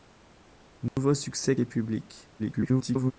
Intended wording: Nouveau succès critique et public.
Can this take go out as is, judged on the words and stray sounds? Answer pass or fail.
fail